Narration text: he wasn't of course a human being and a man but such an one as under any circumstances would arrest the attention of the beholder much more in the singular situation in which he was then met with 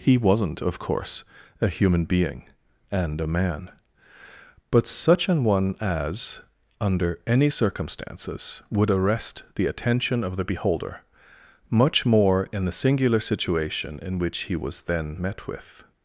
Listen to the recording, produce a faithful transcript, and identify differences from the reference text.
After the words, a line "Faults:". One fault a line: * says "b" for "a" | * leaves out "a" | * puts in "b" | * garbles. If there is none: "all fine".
he wasn't of course a human being and a man but such an one as under any circumstances would arrest the attention of the beholder much more in the singular situation in which he was then met with
Faults:
all fine